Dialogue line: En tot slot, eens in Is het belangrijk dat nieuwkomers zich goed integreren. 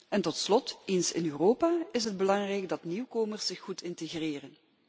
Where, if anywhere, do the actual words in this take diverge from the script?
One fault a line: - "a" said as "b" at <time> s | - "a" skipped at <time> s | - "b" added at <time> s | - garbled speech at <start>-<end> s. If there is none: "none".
- "Europa" added at 1.2 s